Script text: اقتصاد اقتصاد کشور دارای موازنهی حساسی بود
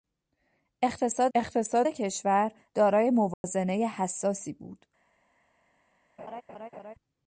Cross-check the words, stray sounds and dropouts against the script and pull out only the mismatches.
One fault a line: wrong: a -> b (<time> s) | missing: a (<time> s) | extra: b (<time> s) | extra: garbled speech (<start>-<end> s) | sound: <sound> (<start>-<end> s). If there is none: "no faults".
sound: dropout (3.3-3.4 s)
sound: laugh (6.2-6.9 s)